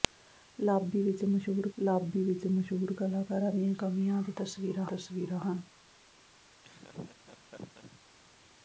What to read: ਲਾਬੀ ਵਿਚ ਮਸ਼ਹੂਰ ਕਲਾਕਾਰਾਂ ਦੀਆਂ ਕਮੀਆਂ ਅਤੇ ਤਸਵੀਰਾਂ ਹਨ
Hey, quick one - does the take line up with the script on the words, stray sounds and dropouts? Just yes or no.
no